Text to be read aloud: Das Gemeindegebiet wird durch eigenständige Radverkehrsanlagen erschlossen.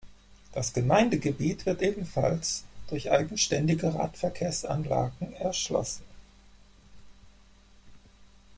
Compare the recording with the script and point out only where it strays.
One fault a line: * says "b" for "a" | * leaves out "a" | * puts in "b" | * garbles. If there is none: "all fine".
* puts in "ebenfalls"